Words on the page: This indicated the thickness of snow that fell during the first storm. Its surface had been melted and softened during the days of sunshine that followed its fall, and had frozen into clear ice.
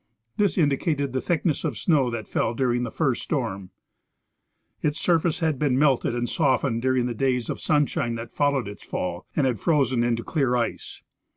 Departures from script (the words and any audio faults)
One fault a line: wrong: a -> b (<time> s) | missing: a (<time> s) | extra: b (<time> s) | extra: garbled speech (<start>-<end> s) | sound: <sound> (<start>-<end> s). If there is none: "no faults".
no faults